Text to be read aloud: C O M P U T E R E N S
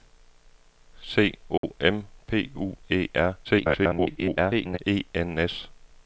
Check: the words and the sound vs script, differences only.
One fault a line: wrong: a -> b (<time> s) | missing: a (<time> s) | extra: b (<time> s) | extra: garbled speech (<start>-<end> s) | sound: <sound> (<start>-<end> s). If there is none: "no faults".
sound: dropout (1.6-1.6 s)
missing: T (2.8 s)
extra: garbled speech (3.4-4.8 s)